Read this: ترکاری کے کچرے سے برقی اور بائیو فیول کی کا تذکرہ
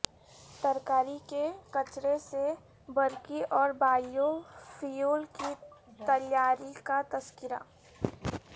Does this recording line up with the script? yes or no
no